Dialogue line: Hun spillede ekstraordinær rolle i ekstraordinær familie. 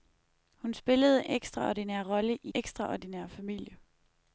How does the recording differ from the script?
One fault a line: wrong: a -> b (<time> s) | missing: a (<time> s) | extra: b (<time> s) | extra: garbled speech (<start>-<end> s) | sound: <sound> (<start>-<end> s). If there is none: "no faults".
no faults